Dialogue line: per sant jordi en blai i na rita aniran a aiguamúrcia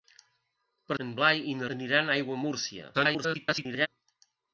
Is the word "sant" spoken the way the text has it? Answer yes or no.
no